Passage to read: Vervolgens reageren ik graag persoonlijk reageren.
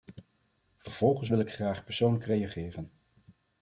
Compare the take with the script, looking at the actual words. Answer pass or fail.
fail